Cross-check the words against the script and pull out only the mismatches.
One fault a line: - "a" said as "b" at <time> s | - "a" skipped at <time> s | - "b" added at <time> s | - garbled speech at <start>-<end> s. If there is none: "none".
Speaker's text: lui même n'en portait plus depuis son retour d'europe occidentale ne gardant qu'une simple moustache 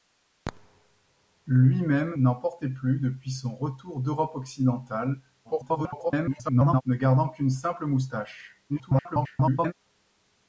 - garbled speech at 5.4-6.8 s
- garbled speech at 8.7-9.7 s